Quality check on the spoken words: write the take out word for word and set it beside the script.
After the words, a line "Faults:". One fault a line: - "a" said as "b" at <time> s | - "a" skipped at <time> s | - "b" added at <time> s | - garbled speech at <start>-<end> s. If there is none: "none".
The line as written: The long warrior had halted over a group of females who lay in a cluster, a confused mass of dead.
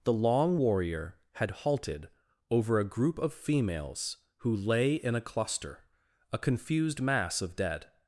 The long warrior had halted over a group of females who lay in a cluster, a confused mass of dead.
Faults:
none